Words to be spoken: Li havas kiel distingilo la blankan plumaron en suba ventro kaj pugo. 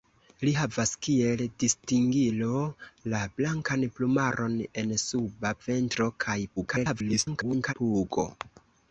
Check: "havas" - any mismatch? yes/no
no